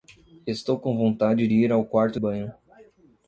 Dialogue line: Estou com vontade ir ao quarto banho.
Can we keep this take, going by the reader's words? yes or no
yes